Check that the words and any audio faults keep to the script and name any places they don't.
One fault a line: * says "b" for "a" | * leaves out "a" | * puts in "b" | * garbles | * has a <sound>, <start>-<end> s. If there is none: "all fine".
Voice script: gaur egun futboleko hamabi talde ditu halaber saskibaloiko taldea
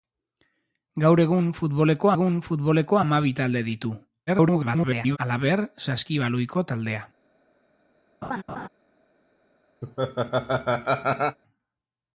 * puts in "egun futboleko"
* garbles
* has a laugh, 8.2-8.7 s
* has a laugh, 9.8-11.4 s